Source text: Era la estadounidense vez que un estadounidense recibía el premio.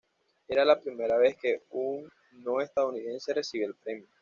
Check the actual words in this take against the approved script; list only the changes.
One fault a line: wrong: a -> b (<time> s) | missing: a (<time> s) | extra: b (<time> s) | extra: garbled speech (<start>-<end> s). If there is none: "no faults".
wrong: estadounidense -> primera (0.8 s)
extra: no (2.3 s)